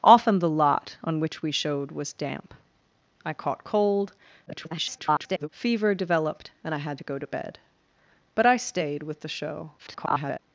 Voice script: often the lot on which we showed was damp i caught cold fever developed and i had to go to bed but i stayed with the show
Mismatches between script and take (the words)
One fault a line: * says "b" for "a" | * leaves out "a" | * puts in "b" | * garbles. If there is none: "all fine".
* garbles
* garbles